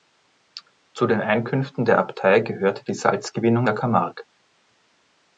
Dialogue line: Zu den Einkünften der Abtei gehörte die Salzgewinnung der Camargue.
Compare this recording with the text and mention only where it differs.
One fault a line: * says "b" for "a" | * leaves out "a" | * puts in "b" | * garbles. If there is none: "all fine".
all fine